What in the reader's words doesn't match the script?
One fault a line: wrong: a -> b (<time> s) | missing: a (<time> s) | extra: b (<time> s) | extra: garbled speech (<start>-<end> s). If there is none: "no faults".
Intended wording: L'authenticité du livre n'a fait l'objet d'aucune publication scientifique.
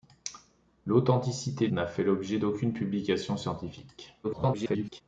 missing: du livre (1.7 s)
extra: garbled speech (4.2-5.0 s)